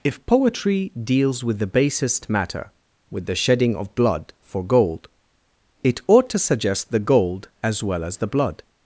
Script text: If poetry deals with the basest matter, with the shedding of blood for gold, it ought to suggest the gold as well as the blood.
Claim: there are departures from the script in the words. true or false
false